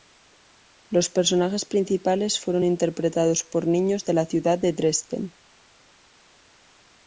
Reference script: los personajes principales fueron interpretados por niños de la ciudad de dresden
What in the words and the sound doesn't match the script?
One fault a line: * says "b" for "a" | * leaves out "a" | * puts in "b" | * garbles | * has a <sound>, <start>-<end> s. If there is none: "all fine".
all fine